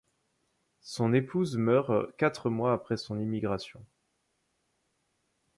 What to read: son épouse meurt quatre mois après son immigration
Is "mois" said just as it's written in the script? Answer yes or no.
yes